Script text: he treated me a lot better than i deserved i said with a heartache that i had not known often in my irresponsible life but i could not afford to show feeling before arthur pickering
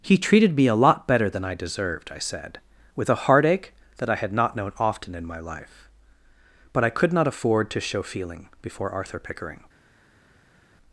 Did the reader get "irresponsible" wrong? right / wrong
wrong